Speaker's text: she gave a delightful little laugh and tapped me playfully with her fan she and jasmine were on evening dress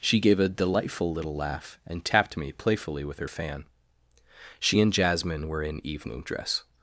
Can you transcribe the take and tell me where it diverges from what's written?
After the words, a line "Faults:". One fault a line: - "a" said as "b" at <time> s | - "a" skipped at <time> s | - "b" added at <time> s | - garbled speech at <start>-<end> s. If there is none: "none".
she gave a delightful little laugh and tapped me playfully with her fan she and jasmine were in evening dress
Faults:
- "on" said as "in" at 5.6 s